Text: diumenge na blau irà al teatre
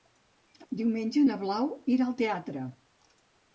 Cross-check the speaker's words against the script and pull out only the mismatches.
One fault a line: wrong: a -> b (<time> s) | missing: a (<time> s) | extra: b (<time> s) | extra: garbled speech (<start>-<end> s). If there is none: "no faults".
no faults